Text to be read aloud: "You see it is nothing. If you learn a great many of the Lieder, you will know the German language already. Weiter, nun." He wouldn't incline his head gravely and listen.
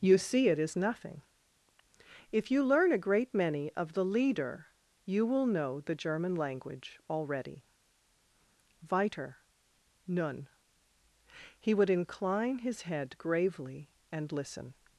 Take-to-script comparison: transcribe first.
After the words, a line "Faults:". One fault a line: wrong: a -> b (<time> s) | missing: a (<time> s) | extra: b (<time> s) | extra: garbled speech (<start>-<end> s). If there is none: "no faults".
"You see it is nothing. If you learn a great many of the Lieder, you will know the German language already. Weiter, nun." He would incline his head gravely and listen.
Faults:
wrong: wouldn't -> would (11.7 s)